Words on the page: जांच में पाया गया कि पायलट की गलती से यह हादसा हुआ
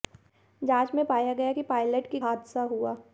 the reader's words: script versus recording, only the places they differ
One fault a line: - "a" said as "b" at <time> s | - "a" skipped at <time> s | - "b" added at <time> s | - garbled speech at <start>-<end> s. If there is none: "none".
- "गलती से यह" skipped at 2.2 s